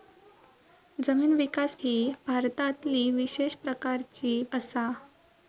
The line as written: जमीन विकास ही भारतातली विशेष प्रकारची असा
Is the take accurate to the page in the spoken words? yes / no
yes